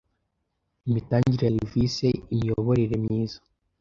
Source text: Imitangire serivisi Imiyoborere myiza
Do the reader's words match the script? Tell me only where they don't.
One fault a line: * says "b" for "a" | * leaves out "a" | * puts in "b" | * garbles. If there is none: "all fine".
all fine